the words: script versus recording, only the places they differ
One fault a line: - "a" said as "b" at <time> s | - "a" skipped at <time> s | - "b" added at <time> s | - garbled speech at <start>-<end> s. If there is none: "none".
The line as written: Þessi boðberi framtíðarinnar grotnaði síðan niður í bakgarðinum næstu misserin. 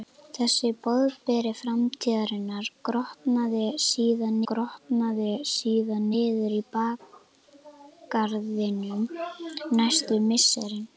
- "grotnaði síðan" added at 4.5 s